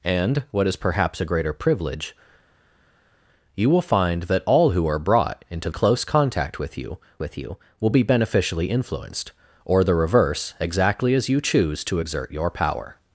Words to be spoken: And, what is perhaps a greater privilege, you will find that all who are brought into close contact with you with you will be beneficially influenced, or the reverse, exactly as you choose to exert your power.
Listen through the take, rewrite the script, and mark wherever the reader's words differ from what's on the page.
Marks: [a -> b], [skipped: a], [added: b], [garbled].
And, what is perhaps a greater privilege, you will find that all who are brought into close contact with you with you will be beneficially influenced, or the reverse, exactly as you choose to exert your power.